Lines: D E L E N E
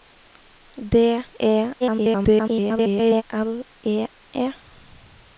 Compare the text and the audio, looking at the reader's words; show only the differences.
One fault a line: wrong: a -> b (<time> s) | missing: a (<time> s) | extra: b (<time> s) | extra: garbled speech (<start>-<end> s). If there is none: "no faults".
extra: garbled speech (1.8-3.2 s)
missing: N (4.1 s)